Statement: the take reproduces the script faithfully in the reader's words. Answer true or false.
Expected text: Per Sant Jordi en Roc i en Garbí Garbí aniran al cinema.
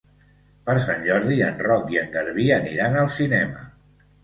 false